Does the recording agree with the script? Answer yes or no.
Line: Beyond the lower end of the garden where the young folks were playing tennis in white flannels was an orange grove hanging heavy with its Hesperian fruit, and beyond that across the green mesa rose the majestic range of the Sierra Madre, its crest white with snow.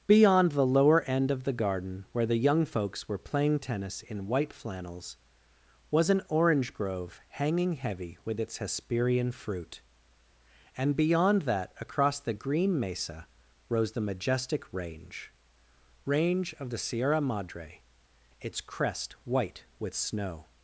no